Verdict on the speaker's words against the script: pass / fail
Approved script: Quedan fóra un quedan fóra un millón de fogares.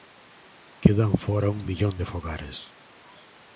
fail